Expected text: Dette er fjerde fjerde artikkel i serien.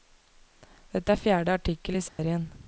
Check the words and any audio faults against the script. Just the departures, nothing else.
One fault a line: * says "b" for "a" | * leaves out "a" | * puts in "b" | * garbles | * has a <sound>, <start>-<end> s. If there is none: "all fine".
* leaves out "fjerde"
* has a dropout, 2.1-2.2 s